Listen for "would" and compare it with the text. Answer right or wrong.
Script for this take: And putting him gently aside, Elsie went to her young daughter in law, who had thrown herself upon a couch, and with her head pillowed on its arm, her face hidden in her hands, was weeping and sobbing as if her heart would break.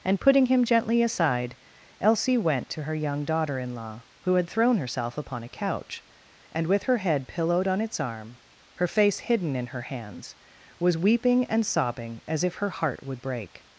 right